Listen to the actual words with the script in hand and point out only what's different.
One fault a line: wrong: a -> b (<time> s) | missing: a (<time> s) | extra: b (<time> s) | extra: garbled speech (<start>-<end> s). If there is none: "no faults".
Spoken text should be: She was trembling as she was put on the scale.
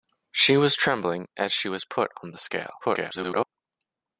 extra: garbled speech (2.8-3.4 s)